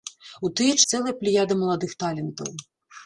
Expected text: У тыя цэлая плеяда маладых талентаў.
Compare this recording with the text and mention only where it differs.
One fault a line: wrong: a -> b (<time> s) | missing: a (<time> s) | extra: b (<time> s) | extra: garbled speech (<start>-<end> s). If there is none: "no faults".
no faults